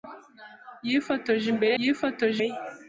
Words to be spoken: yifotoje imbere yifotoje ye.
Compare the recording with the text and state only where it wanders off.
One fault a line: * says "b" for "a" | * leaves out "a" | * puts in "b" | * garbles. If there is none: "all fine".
all fine